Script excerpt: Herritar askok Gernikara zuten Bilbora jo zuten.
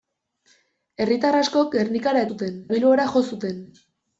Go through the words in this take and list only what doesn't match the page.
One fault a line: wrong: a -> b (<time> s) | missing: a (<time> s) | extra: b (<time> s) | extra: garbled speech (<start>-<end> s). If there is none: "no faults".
no faults